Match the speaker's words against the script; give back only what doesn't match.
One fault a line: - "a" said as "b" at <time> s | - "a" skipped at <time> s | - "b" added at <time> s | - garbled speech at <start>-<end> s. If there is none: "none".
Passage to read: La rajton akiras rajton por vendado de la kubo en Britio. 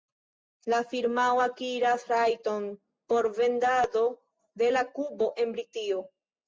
- "rajton" said as "firmao" at 0.9 s